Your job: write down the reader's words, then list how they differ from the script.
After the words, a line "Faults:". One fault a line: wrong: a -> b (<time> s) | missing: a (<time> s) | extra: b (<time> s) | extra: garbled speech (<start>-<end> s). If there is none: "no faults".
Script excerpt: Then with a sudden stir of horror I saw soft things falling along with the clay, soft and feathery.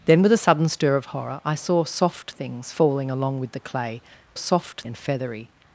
Then with a sudden stir of horror I saw soft things falling along with the clay, soft and feathery.
Faults:
no faults